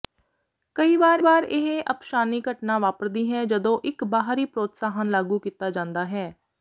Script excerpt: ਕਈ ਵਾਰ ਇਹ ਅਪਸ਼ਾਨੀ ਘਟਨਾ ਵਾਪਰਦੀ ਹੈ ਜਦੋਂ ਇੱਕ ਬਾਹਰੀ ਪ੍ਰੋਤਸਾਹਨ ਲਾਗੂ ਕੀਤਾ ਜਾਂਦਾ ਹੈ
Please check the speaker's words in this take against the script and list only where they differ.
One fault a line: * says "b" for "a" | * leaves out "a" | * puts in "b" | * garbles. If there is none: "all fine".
* puts in "ਵਾਰ"